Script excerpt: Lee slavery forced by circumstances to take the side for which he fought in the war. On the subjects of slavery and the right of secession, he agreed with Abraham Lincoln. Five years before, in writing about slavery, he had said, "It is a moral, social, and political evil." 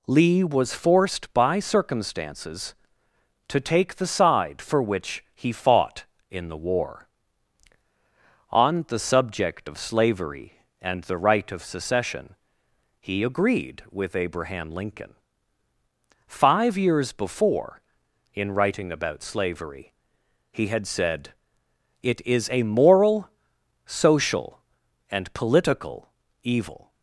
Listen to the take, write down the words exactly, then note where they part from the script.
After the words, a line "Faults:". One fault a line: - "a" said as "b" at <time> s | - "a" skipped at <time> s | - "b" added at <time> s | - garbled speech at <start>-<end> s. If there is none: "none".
Lee was forced by circumstances to take the side for which he fought in the war. On the subject of slavery and the right of secession, he agreed with Abraham Lincoln. Five years before, in writing about slavery, he had said, "It is a moral, social, and political evil."
Faults:
- "slavery" said as "was" at 0.4 s
- "subjects" said as "subject" at 9.0 s